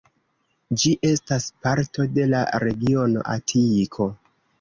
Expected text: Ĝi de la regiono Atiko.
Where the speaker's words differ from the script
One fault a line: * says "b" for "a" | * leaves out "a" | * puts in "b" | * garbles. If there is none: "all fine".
* puts in "estas parto"